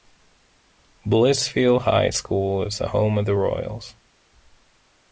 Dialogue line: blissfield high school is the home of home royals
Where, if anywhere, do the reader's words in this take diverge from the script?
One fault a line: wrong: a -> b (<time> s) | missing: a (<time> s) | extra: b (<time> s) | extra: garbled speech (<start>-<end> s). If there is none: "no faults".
wrong: home -> the (3.3 s)